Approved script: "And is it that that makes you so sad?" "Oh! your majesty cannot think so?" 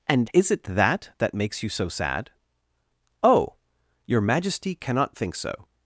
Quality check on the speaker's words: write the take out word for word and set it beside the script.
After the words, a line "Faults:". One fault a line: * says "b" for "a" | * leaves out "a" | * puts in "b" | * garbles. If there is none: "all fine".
"And is it that that makes you so sad?" "Oh! your majesty cannot think so?"
Faults:
all fine